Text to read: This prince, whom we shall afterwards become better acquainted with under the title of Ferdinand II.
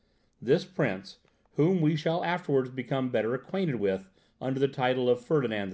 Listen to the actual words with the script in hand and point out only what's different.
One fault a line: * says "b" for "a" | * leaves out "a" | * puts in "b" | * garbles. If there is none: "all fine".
all fine